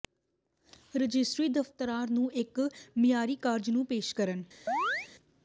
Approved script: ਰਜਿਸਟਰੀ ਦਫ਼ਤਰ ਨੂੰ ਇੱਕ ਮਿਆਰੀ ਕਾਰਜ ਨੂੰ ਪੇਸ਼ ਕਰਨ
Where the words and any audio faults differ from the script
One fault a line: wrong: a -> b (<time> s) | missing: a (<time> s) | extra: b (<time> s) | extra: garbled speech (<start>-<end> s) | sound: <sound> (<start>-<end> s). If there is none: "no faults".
sound: chirp (4.7-5.1 s)